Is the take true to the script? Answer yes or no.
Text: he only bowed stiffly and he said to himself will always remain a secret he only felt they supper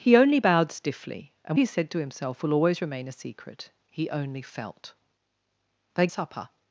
yes